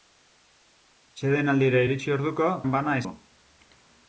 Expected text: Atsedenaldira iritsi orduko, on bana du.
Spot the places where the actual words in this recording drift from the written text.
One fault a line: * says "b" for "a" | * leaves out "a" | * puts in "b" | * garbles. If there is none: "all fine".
all fine